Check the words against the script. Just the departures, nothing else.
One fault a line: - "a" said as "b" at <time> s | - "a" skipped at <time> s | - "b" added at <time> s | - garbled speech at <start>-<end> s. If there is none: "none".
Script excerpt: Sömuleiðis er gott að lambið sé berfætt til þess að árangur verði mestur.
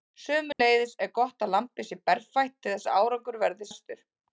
none